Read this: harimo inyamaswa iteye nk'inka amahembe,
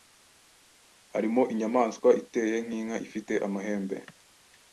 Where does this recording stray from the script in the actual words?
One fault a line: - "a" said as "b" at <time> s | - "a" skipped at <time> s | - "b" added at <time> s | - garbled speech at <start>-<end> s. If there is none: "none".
- "ifite" added at 3.1 s